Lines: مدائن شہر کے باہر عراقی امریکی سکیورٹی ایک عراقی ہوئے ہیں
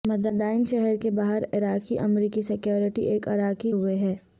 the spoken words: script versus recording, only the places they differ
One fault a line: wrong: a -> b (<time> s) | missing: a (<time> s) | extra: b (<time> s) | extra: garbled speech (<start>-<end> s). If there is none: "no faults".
no faults